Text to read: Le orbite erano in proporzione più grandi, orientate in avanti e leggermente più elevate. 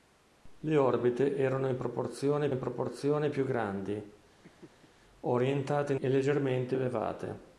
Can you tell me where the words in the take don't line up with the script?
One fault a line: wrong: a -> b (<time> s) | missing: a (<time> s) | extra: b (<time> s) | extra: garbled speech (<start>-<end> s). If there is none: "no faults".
extra: in proporzione (2.5 s)
missing: avanti (6.0 s)
missing: più (6.7 s)